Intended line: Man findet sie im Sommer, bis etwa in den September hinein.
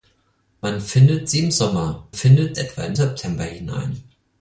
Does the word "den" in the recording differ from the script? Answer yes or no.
yes